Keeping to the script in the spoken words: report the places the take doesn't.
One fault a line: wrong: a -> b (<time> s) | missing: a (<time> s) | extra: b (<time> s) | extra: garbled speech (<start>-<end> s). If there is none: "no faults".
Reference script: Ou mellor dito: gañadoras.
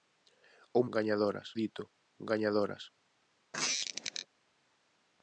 wrong: mellor -> gañadoras (0.9 s)